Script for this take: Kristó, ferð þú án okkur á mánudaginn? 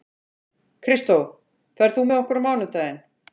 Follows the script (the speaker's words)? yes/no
no